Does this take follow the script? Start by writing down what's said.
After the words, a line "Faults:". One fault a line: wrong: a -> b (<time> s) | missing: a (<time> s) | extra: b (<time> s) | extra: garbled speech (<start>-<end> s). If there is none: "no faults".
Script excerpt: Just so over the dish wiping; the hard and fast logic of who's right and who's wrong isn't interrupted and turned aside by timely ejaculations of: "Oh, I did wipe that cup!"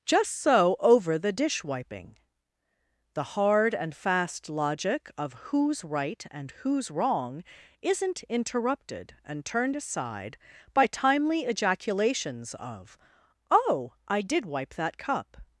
Just so over the dish wiping; the hard and fast logic of who's right and who's wrong isn't interrupted and turned aside by timely ejaculations of: "Oh, I did wipe that cup!"
Faults:
no faults